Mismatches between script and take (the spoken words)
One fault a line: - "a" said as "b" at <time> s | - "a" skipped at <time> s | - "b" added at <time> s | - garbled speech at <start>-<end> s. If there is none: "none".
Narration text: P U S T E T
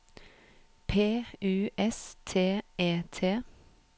none